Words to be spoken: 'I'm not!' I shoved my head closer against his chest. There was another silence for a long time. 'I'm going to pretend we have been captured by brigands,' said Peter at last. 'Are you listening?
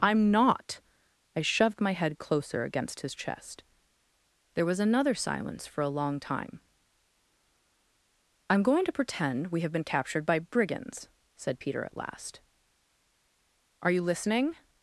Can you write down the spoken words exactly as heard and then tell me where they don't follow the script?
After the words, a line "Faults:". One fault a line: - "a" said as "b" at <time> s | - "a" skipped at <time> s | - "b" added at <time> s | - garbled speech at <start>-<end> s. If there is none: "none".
'I'm not!' I shoved my head closer against his chest. There was another silence for a long time. 'I'm going to pretend we have been captured by brigands,' said Peter at last. 'Are you listening?
Faults:
none